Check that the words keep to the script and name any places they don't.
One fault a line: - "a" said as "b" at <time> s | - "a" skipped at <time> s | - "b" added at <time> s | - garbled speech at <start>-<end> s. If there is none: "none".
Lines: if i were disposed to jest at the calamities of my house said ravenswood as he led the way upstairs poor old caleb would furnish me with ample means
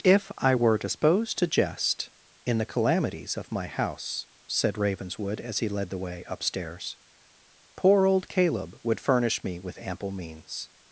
- "at" said as "in" at 2.5 s